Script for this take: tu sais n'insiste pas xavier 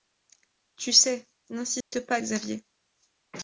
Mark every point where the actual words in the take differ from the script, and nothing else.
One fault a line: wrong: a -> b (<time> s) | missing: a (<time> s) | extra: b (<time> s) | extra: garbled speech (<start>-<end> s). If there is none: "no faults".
no faults